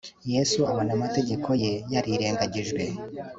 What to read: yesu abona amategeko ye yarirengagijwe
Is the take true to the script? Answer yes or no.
yes